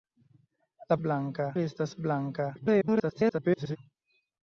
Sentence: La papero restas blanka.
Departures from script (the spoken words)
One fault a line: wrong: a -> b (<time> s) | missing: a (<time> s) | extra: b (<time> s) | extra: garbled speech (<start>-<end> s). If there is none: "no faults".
wrong: papero -> blanka (1.1 s)
extra: garbled speech (2.5-3.8 s)